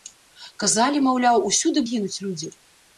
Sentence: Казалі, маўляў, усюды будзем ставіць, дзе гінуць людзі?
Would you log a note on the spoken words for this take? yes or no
yes